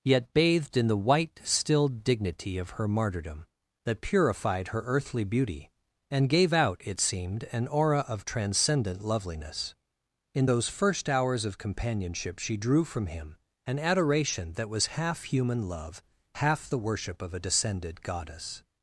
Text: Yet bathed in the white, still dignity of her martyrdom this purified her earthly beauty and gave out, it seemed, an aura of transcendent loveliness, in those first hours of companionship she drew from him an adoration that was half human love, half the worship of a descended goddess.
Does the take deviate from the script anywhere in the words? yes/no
yes